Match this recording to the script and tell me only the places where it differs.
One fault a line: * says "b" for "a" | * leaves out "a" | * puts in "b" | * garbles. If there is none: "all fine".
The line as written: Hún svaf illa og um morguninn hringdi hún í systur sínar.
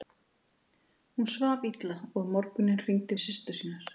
* leaves out "hún"